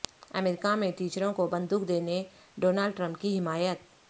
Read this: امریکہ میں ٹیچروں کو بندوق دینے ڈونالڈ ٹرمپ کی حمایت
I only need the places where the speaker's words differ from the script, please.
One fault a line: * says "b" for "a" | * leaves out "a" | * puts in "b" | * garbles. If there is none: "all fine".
all fine